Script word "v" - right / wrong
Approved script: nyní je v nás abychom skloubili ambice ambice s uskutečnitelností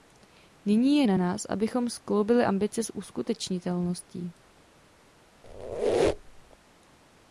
wrong